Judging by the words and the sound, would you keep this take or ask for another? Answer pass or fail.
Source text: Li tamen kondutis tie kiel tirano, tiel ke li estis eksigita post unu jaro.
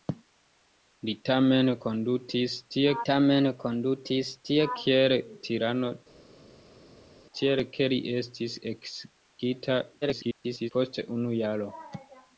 fail